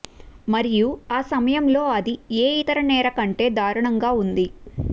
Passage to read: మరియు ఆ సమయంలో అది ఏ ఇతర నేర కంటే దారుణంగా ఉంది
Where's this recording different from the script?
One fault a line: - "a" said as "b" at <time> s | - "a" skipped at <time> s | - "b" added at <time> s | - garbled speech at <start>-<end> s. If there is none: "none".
none